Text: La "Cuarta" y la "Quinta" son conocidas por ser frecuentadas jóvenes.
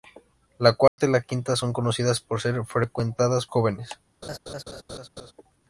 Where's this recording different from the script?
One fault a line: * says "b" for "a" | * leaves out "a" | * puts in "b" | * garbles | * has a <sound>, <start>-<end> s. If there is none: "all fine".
* has a dropout, 0.9-1.0 s
* has a laugh, 4.2-5.3 s